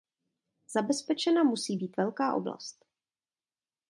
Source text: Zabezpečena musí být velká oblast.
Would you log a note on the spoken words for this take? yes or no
no